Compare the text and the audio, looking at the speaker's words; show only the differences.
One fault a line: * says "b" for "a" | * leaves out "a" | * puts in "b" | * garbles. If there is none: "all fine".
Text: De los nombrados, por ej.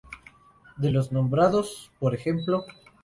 all fine